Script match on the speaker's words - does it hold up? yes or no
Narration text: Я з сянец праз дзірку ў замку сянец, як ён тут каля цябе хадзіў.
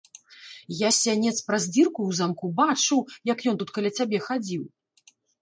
no